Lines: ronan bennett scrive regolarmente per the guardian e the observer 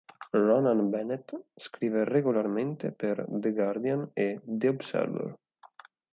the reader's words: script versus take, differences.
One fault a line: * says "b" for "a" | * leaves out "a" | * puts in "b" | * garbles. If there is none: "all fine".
all fine